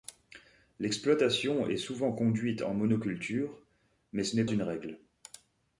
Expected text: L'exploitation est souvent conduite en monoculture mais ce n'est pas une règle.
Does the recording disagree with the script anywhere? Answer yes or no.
yes